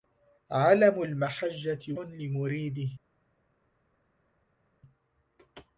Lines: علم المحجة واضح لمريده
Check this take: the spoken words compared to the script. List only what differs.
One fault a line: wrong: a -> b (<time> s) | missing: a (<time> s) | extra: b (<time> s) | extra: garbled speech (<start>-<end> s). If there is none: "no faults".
missing: واضح (1.9 s)